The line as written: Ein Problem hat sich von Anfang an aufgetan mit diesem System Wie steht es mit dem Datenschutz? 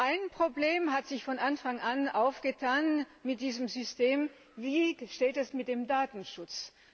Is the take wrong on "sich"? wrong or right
right